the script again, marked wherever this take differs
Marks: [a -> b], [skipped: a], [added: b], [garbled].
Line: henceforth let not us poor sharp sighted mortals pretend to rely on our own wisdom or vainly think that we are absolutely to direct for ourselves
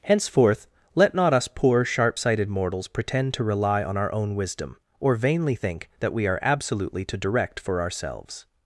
henceforth let not us poor sharp sighted mortals pretend to rely on our own wisdom or vainly think that we are absolutely to direct for ourselves